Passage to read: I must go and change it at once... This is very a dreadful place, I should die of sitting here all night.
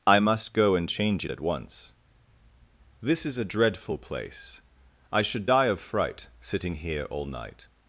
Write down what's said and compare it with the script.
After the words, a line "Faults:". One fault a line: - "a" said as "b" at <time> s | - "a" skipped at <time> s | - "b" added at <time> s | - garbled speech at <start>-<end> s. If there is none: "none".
I must go and change it at once... This is a dreadful place, I should die of fright sitting here all night.
Faults:
- "very" skipped at 3.4 s
- "fright" added at 5.8 s